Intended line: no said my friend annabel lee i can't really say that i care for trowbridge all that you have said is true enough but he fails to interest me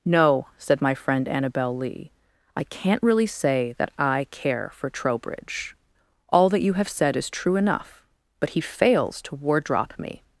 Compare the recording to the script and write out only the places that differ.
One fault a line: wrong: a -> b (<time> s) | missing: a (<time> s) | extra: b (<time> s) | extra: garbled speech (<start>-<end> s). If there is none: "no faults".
wrong: interest -> wardrop (9.3 s)